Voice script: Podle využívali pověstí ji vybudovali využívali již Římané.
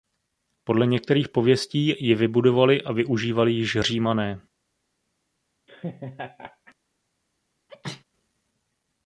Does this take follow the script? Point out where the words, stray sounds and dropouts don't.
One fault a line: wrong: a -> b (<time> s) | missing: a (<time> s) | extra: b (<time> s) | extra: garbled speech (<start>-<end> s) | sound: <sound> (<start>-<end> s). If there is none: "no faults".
wrong: využívali -> některých (0.9 s)
extra: a (2.8 s)
sound: laugh (5.7-6.7 s)
sound: sneeze (7.7-8.0 s)